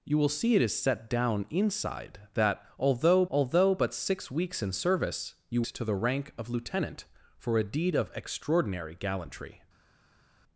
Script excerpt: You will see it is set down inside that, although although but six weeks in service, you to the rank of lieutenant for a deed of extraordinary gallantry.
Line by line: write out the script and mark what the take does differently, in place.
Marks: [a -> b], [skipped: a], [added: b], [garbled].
You will see it is set down inside that, although although but six weeks in service, you to the rank of lieutenant for a deed of extraordinary gallantry.